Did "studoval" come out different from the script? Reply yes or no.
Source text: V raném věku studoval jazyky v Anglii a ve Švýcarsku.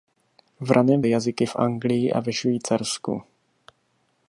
yes